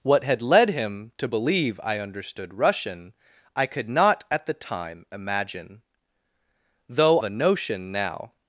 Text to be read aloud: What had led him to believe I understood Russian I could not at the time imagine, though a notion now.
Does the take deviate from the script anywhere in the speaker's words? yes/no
no